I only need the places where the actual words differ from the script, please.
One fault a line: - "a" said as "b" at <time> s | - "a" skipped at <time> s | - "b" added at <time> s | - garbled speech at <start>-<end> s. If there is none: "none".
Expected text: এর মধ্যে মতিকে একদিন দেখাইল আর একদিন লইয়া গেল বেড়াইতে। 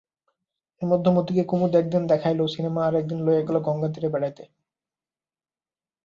- "কুমুদ" added at 1.4 s
- "সিনেমা" added at 2.5 s
- "গঙ্গাতীরে" added at 3.6 s